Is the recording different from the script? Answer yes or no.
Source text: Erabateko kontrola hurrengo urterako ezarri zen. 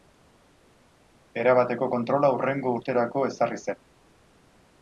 no